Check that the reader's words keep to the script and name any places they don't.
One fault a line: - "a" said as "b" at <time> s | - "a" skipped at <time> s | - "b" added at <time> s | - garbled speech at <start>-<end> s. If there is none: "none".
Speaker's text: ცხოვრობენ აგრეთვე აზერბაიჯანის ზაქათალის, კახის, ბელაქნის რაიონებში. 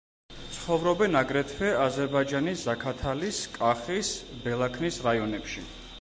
none